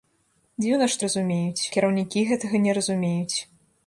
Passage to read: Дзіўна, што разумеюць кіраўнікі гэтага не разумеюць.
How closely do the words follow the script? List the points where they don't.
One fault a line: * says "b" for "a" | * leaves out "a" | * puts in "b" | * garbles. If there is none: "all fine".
all fine